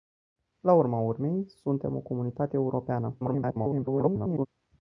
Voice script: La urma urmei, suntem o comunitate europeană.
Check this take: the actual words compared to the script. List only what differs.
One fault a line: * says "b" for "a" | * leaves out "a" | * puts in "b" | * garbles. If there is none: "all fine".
* garbles